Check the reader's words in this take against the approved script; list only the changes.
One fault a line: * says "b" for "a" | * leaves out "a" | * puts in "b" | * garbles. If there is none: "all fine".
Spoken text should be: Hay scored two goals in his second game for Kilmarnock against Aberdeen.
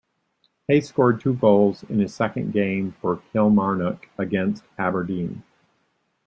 all fine